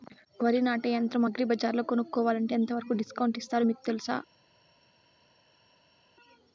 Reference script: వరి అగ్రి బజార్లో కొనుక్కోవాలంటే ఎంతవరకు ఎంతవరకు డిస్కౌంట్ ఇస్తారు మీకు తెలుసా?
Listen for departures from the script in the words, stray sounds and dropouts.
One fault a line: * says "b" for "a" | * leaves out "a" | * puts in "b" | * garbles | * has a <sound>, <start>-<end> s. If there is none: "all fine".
* puts in "నాటే యంత్రం"
* leaves out "ఎంతవరకు"